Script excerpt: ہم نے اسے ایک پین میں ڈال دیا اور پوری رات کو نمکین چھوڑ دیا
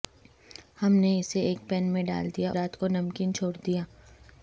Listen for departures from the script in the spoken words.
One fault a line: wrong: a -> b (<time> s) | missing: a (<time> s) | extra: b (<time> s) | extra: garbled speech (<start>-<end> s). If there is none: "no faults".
missing: اور پوری (2.5 s)